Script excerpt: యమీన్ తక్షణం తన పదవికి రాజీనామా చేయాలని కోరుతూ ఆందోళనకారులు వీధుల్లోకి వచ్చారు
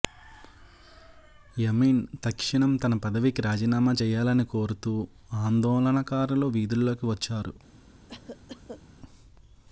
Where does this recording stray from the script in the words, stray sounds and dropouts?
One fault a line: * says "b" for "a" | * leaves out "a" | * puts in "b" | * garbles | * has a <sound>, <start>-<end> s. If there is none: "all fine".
* has a cough, 8.1-8.8 s